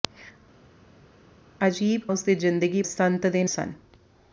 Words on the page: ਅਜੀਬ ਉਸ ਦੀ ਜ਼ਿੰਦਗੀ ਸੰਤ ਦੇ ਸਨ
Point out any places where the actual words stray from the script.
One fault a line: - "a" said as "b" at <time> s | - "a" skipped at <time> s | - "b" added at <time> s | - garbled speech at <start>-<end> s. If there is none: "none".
none